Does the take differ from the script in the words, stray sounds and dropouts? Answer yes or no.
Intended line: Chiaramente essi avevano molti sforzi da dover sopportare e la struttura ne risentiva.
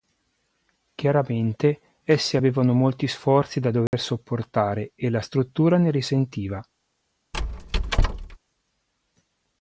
yes